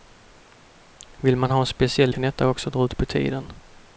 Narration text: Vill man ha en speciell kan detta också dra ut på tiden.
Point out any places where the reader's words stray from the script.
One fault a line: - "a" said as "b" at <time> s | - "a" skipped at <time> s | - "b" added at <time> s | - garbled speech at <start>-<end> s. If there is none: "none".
none